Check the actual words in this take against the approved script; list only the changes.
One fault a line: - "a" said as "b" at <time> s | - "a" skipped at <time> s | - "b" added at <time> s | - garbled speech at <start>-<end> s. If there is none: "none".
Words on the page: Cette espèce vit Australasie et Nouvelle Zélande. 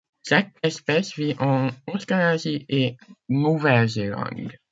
- "en" added at 1.4 s